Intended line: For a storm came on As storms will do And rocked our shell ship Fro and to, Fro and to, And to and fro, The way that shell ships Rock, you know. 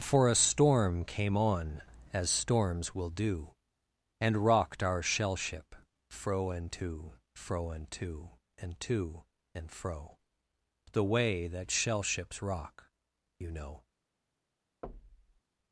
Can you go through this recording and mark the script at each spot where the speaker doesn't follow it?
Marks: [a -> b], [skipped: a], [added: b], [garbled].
For a storm came on As storms will do And rocked our shell ship Fro and to, Fro and to, And to and fro, The way that shell ships Rock, you know.